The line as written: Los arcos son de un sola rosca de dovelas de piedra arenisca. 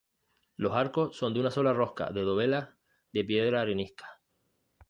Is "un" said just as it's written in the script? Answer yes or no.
no